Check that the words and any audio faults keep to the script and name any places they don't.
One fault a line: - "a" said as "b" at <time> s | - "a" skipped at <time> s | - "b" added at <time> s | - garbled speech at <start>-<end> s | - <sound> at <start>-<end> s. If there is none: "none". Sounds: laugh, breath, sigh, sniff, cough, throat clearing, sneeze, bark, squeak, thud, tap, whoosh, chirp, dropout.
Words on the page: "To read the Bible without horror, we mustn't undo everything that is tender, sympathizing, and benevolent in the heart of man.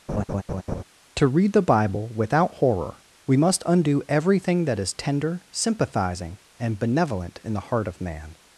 - laugh at 0.1-0.8 s
- "mustn't" said as "must" at 3.4 s